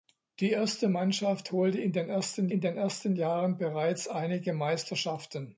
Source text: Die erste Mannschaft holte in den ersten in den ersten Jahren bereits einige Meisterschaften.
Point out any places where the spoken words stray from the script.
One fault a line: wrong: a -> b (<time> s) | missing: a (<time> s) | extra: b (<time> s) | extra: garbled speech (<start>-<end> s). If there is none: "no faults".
no faults